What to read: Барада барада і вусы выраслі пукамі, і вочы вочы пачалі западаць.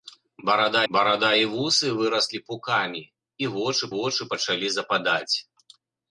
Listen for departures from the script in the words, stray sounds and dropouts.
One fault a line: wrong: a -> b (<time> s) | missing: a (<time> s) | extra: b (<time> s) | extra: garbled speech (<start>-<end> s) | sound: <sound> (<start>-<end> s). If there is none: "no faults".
no faults